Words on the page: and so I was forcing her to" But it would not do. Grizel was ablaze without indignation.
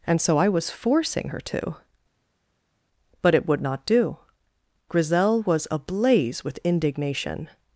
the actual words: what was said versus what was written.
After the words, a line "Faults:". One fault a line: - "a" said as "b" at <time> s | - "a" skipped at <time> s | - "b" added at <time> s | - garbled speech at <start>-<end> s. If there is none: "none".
and so I was forcing her to" But it would not do. Grizel was ablaze with indignation.
Faults:
- "without" said as "with" at 6.4 s